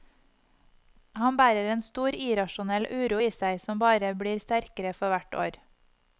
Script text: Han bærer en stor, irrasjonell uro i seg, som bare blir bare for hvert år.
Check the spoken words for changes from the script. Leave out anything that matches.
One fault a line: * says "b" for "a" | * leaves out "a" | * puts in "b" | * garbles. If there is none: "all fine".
* says "sterkere" for "bare"